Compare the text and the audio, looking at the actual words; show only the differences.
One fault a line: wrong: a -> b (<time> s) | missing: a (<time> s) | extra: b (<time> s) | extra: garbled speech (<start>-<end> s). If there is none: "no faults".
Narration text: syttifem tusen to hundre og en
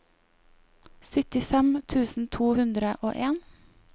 no faults